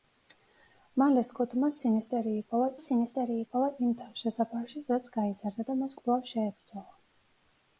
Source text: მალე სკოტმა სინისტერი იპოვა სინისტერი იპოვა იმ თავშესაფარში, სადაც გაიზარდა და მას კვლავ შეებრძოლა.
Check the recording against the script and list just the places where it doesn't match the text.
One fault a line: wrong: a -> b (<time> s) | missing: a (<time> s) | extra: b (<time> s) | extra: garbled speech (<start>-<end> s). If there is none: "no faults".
no faults